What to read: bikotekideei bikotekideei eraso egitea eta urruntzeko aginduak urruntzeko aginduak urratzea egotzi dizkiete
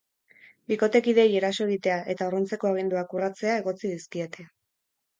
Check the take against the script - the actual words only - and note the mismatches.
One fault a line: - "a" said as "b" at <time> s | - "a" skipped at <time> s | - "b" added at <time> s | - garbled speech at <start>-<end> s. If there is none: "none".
- "bikotekideei" skipped at 1.4 s
- "urruntzeko aginduak" skipped at 3.2 s